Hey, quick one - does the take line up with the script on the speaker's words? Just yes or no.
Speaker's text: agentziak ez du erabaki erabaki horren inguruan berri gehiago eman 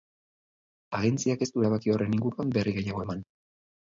no